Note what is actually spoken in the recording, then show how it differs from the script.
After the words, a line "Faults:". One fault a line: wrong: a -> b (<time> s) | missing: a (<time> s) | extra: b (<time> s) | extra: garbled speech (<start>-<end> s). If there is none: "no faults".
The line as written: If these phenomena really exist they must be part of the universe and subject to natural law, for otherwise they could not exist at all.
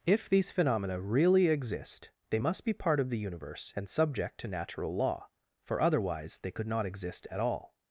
If these phenomena really exist they must be part of the universe and subject to natural law, for otherwise they could not exist at all.
Faults:
no faults